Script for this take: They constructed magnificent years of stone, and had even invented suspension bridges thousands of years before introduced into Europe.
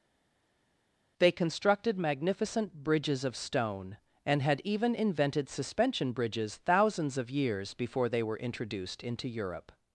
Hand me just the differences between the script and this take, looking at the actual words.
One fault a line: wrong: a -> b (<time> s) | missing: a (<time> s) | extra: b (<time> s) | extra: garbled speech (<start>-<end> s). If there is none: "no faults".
wrong: years -> bridges (2.8 s)
extra: they were (8.1 s)